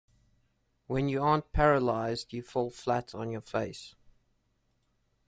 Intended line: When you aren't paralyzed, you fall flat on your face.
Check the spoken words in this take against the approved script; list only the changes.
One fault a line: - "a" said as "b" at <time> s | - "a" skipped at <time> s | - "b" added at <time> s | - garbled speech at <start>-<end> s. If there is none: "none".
none